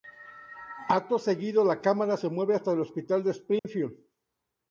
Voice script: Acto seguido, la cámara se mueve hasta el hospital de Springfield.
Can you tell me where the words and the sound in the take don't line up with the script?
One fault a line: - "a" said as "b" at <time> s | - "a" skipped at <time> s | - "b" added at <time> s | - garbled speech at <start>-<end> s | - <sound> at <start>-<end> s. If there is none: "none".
- dropout at 3.6-3.6 s